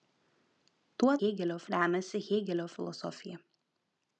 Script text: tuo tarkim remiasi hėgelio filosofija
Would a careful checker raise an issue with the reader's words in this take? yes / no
yes